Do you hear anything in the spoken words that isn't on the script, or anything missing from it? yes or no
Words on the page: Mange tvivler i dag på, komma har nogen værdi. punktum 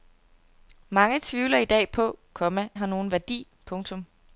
no